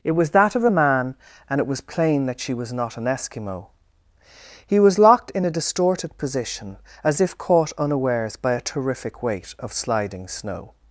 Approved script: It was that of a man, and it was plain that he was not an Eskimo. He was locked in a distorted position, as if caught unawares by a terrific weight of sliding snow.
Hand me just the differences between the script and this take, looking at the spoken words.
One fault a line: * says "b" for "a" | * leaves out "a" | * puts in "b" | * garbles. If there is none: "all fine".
* says "she" for "he"